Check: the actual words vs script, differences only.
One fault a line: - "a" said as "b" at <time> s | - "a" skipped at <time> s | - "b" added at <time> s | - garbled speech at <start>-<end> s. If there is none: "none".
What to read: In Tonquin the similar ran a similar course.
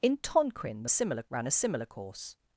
none